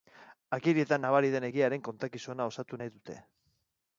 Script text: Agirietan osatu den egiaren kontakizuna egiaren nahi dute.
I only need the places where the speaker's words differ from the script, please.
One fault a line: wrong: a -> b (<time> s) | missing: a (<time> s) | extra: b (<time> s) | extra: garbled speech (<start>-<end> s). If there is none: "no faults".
wrong: osatu -> nabari (1.0 s)
wrong: egiaren -> osatu (2.5 s)